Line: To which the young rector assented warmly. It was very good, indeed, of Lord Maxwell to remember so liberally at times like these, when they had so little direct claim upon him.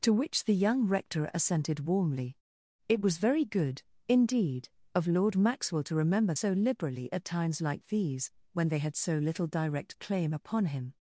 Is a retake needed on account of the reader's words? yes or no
no